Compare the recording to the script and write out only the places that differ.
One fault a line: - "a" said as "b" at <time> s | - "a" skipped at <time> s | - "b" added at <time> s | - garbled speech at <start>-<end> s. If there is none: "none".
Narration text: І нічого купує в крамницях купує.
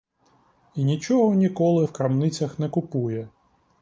- "купує" said as "ніколи" at 1.4 s
- "не" added at 2.6 s